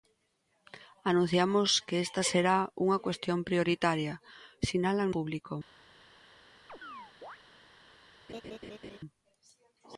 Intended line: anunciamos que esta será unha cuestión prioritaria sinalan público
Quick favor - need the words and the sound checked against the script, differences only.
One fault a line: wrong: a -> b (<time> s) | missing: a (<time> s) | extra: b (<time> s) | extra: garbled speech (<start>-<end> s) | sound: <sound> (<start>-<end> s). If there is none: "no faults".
sound: chirp (6.7-7.4 s)
sound: laugh (8.3-9.0 s)